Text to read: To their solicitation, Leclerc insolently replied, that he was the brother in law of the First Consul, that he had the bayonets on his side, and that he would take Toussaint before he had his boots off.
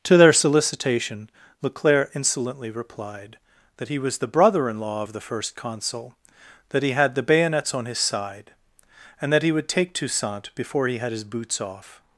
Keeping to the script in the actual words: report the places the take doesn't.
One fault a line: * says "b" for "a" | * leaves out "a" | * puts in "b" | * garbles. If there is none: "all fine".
all fine